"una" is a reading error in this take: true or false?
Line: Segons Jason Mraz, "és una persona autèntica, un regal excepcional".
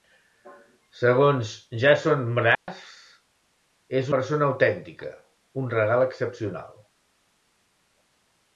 true